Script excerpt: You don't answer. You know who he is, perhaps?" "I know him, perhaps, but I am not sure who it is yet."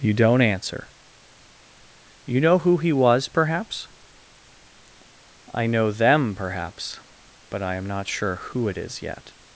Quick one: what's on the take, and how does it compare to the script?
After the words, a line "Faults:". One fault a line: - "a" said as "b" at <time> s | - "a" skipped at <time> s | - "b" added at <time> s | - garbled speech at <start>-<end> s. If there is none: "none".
You don't answer. You know who he was, perhaps?" "I know them, perhaps, but I am not sure who it is yet."
Faults:
- "is" said as "was" at 2.9 s
- "him" said as "them" at 5.9 s